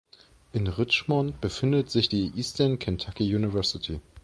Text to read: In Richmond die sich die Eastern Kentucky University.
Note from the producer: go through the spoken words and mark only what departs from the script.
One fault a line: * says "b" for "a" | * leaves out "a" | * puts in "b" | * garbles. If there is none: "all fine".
* says "befindet" for "die"